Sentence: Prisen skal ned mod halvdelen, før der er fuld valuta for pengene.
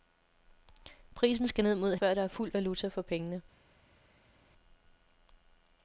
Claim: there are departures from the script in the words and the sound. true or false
true